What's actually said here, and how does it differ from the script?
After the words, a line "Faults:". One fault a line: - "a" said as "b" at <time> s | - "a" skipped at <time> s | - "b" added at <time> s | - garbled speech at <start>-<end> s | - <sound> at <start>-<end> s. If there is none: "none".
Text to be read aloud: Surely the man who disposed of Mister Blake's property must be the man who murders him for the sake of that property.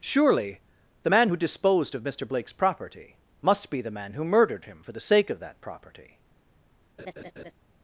Surely the man who disposed of Mister Blake's property must be the man who murdered him for the sake of that property.
Faults:
- "murders" said as "murdered" at 4.2 s
- laugh at 7.0-7.5 s